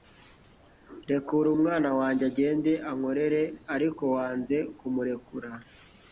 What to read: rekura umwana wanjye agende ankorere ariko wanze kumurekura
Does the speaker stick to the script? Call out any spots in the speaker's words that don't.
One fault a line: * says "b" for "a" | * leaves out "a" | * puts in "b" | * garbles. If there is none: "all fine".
all fine